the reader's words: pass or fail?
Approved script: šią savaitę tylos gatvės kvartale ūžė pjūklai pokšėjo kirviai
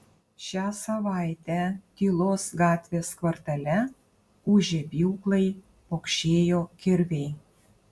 pass